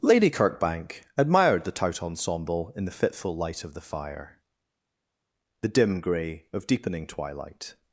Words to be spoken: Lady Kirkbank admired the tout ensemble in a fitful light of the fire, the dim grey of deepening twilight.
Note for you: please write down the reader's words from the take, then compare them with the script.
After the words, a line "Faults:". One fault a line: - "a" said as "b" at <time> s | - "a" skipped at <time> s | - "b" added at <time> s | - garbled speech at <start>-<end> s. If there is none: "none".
Lady Kirkbank admired the tout ensemble in the fitful light of the fire, the dim grey of deepening twilight.
Faults:
- "a" said as "the" at 2.8 s